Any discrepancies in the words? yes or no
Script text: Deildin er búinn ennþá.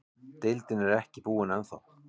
yes